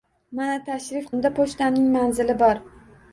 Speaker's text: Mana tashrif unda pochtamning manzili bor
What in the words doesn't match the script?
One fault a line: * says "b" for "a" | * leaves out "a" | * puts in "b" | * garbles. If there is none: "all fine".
all fine